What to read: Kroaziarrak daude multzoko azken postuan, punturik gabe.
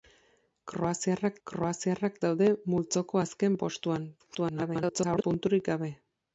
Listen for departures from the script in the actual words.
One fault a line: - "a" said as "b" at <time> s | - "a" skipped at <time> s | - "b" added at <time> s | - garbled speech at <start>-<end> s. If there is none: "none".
- "kroaziarrak" added at 1.5 s
- garbled speech at 4.2-5.2 s